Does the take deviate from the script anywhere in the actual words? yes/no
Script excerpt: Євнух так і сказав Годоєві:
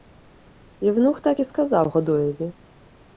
no